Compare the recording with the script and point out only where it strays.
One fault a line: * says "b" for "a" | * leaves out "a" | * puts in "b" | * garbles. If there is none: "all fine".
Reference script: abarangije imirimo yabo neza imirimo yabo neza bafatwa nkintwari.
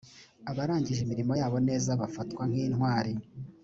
* leaves out "imirimo yabo neza"